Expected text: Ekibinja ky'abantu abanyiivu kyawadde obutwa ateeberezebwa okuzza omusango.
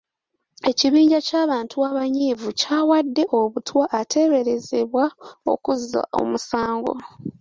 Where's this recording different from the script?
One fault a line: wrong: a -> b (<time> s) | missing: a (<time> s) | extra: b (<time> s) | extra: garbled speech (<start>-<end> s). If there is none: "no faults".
no faults